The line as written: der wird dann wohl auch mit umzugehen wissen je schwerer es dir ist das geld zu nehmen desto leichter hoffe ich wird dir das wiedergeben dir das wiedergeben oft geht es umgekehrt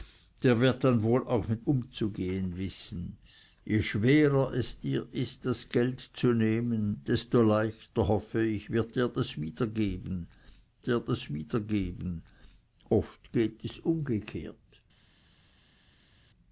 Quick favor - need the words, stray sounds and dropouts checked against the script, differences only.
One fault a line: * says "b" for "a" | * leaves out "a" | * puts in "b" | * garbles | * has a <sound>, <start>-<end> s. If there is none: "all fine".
all fine